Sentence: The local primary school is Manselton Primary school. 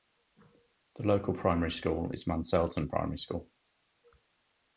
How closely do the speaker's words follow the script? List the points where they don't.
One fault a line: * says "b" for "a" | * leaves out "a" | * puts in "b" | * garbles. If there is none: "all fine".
all fine